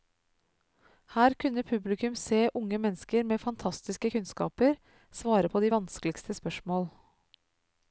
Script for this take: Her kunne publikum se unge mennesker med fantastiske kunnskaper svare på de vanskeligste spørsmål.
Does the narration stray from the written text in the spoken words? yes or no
no